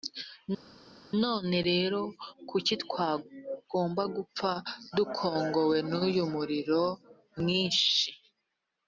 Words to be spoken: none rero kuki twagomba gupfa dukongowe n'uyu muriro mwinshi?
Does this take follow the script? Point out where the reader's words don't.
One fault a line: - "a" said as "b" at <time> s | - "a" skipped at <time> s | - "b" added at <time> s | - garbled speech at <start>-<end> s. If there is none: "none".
none